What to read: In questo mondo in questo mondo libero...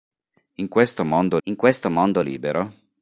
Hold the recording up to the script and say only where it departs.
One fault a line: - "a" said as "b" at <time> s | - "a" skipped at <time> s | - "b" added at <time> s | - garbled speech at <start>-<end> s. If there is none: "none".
none